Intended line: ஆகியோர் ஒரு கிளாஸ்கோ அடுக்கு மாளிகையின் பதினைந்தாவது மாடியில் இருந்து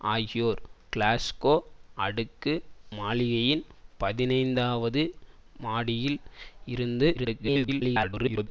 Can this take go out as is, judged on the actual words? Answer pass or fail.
fail